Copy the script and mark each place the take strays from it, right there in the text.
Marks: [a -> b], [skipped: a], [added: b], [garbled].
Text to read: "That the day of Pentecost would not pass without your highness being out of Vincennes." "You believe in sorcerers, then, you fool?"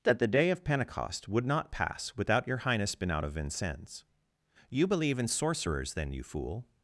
"That the day of Pentecost would not pass without your highness [being -> been] out of Vincennes." "You believe in sorcerers, then, you fool?"